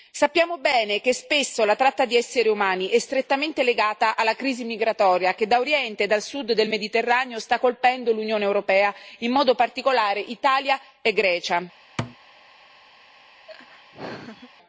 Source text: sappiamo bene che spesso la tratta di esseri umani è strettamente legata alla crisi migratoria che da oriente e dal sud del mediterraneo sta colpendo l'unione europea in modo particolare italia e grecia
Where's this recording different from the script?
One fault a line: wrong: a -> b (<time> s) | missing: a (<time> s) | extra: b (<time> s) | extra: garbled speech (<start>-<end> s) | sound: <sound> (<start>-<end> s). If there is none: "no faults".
sound: thud (12.0-12.2 s)
sound: laugh (13.5-14.5 s)